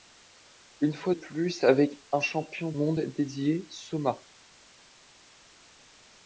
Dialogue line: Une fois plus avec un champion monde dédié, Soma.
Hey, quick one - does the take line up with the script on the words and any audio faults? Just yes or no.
yes